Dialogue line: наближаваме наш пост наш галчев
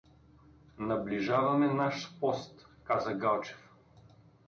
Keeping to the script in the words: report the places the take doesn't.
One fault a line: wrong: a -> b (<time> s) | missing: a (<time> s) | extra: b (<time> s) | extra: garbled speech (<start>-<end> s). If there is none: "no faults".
wrong: наш -> каза (2.8 s)